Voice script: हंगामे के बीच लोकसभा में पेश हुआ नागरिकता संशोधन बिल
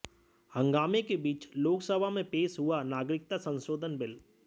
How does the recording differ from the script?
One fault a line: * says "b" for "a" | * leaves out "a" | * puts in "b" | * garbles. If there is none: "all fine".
all fine